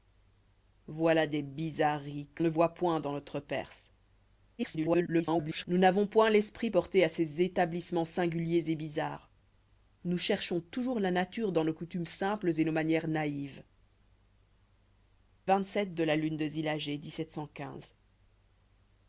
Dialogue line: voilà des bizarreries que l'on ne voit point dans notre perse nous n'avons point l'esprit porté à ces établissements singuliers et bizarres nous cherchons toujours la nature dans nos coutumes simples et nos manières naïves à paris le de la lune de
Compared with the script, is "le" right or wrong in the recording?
wrong